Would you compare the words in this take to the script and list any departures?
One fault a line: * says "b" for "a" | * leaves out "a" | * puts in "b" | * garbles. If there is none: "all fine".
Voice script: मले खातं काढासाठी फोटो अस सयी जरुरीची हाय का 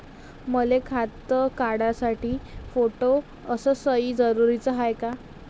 all fine